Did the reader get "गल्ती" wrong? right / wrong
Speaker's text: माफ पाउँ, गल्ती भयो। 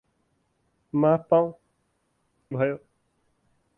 wrong